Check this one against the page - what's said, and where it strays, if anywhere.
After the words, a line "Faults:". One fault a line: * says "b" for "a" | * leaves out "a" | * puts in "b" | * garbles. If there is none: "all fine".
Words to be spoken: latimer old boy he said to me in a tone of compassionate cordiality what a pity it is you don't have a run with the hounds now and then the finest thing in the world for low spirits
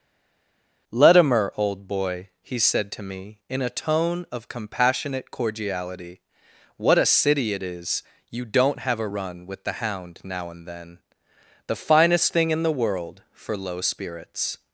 latimer old boy he said to me in a tone of compassionate cordiality what a city it is you don't have a run with the hound now and then the finest thing in the world for low spirits
Faults:
* says "city" for "pity"
* says "hound" for "hounds"